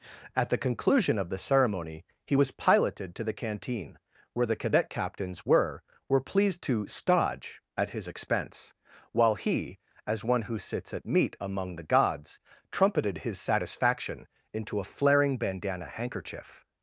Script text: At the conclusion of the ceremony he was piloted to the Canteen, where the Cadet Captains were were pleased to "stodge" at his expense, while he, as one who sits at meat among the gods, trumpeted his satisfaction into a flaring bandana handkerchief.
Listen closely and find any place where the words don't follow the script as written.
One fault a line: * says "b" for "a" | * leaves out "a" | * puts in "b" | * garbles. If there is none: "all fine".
all fine